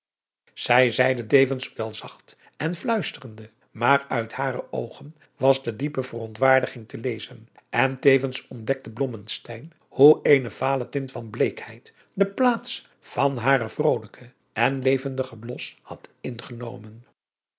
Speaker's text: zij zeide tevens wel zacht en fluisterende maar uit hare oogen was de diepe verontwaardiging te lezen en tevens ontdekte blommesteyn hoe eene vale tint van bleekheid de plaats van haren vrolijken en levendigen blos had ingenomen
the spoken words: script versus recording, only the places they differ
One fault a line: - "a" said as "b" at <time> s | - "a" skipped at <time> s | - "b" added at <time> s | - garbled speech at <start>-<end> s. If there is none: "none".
none